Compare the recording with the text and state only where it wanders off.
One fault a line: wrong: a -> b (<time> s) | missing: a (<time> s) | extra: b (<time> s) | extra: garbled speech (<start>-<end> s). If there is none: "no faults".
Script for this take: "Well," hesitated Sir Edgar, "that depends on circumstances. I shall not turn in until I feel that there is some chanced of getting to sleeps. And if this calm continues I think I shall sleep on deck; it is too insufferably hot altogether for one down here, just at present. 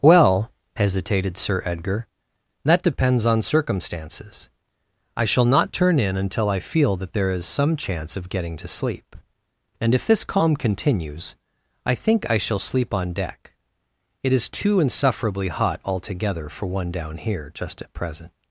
wrong: chanced -> chance (7.8 s)
wrong: sleeps -> sleep (8.7 s)